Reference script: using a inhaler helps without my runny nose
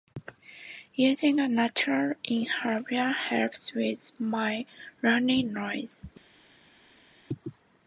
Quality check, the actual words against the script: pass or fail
fail